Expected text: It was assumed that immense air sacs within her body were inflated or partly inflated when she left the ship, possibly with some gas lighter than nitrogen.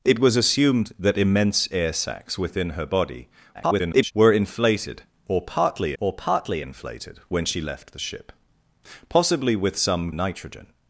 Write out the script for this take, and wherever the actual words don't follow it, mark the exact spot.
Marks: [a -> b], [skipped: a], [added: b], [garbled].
It was assumed that immense air sacs within her body [garbled] were inflated or partly [added: or partly] inflated when she left the ship, possibly with some [skipped: gas lighter than] nitrogen.